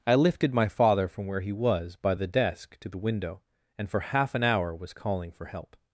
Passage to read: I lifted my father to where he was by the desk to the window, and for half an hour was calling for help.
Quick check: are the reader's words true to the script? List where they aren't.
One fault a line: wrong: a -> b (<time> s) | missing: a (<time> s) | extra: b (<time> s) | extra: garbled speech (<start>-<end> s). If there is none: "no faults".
wrong: to -> from (1.1 s)